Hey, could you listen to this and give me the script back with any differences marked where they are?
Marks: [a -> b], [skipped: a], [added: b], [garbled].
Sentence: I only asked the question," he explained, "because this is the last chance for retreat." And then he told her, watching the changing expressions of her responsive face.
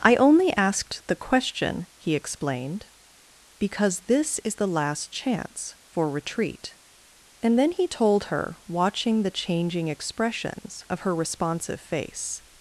I only asked the question," he explained, "because this is the last chance for retreat." And then he told her, watching the changing expressions of her responsive face.